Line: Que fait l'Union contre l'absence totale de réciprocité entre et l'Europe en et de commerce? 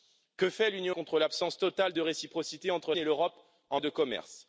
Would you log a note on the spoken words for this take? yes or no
no